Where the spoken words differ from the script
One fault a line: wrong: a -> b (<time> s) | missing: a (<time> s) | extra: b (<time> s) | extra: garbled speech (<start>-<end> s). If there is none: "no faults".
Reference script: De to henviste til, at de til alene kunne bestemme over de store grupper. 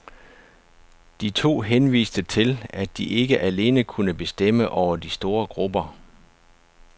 wrong: til -> ikke (3.0 s)